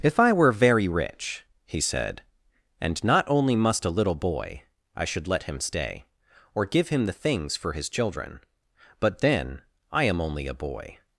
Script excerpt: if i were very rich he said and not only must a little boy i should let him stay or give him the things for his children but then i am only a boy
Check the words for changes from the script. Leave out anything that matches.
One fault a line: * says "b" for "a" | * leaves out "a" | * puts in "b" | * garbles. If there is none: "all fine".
all fine